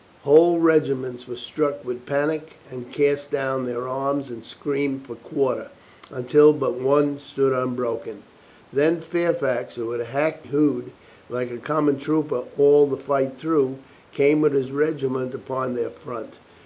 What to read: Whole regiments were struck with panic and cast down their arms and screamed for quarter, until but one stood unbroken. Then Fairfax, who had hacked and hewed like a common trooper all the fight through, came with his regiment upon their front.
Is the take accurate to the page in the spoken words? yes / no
no